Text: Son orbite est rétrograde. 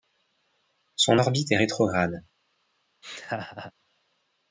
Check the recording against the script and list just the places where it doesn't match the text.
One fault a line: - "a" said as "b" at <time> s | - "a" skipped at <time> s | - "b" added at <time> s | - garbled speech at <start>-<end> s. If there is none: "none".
none